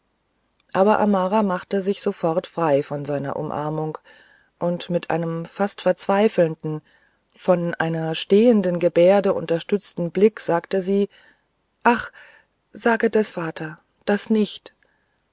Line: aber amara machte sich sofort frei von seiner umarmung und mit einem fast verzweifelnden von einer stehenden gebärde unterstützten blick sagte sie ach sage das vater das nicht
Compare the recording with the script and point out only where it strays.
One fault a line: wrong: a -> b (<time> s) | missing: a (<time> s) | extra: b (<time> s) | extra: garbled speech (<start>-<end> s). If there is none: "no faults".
no faults